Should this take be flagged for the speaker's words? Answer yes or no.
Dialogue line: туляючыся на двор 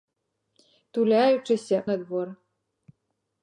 no